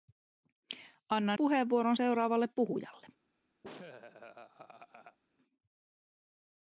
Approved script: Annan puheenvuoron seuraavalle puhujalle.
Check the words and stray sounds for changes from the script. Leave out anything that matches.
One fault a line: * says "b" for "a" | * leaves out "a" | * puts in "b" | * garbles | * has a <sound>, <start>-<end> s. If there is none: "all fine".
* has a laugh, 3.6-5.2 s